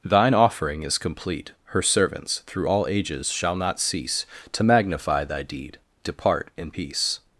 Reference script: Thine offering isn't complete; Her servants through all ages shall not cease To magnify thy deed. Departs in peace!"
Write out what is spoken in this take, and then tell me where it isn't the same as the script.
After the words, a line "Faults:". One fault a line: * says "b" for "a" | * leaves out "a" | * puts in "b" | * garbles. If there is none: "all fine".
Thine offering is complete; Her servants through all ages shall not cease To magnify thy deed. Depart in peace!"
Faults:
* says "is" for "isn't"
* says "Depart" for "Departs"